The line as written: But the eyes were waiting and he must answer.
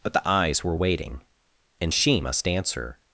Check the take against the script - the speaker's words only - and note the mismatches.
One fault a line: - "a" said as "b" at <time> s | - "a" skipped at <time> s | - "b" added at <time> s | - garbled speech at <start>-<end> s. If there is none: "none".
- "he" said as "she" at 1.9 s